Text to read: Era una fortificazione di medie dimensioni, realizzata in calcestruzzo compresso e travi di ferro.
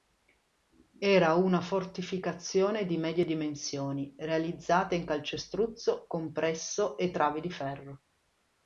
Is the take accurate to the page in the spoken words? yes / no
yes